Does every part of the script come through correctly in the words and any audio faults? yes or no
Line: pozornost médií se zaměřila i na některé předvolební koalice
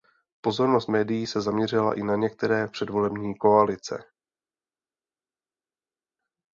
yes